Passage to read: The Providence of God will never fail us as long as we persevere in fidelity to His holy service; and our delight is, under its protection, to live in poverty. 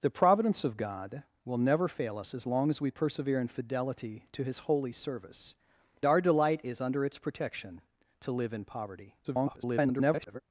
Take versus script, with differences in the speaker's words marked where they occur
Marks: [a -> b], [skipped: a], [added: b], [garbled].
The Providence of God will never fail us as long as we persevere in fidelity to His holy service; [skipped: and] our delight is, under its protection, to live in poverty. [garbled]